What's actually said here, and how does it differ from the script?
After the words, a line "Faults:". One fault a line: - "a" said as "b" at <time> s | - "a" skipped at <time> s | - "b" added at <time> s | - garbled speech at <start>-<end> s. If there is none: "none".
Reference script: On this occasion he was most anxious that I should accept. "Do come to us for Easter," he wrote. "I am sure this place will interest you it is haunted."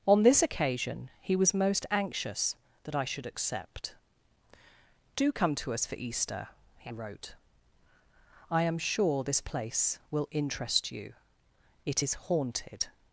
On this occasion he was most anxious that I should accept. "Do come to us for Easter," he wrote. "I am sure this place will interest you it is haunted."
Faults:
none